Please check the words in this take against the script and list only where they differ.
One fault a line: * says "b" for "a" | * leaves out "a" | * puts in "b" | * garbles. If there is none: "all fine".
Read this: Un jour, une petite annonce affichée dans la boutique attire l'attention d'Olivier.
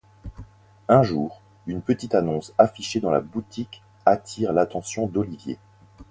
all fine